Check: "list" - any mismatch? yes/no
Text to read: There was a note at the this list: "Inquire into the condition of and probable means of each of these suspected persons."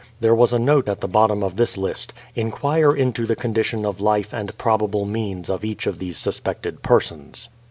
no